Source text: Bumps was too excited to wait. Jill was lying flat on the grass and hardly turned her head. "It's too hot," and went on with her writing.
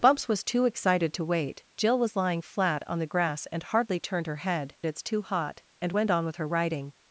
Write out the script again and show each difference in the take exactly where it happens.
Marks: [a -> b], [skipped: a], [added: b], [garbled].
Bumps was too excited to wait. Jill was lying flat on the grass and hardly turned her head. "It's too hot," and went on with her writing.